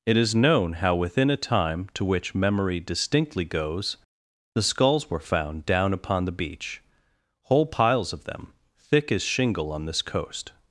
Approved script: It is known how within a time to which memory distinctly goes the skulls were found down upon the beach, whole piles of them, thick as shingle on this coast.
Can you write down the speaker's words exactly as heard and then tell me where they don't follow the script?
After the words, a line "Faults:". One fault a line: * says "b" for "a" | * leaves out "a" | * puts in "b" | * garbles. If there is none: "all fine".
It is known how within a time to which memory distinctly goes the skulls were found down upon the beach, whole piles of them, thick as shingle on this coast.
Faults:
all fine